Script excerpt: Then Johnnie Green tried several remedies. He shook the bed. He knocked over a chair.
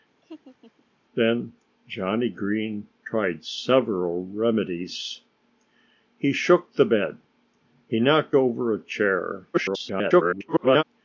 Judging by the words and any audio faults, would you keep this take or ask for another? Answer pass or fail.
fail